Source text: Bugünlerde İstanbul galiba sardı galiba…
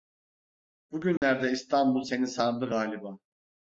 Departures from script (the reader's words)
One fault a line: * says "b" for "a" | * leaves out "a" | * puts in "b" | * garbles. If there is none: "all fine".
* says "seni" for "galiba"